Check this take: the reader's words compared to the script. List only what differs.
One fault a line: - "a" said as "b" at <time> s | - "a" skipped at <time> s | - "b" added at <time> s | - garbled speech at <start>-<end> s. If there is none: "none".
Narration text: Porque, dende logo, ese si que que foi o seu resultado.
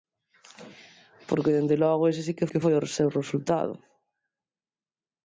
none